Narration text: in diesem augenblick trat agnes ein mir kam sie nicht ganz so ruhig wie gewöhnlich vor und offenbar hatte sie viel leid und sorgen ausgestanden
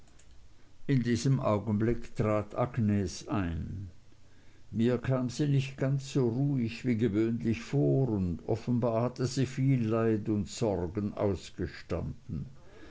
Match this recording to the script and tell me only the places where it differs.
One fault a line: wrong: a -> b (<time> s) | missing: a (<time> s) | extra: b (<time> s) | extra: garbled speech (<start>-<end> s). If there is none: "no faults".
no faults